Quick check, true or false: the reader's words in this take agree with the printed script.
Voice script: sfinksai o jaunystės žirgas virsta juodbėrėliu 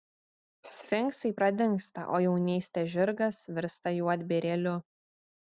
false